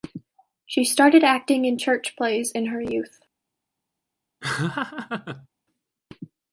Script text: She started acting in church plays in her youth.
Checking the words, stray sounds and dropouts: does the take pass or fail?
fail